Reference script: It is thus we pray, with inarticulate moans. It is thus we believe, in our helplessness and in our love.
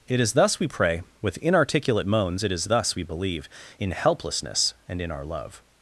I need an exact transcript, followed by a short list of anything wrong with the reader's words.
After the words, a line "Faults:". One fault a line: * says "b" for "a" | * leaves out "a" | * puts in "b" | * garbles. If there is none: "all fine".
It is thus we pray, with inarticulate moans. It is thus we believe, in helplessness and in our love.
Faults:
* leaves out "our"